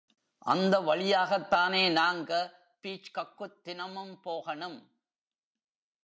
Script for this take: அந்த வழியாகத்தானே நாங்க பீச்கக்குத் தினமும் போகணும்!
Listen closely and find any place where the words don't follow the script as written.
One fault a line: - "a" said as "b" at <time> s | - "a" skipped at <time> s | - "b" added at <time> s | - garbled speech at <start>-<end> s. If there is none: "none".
none